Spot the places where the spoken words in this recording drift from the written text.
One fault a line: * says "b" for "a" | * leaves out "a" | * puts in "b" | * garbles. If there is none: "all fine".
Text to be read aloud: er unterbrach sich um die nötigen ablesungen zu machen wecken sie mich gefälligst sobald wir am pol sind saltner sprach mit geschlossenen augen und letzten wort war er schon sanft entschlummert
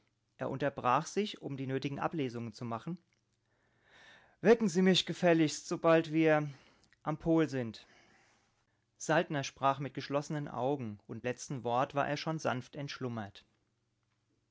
all fine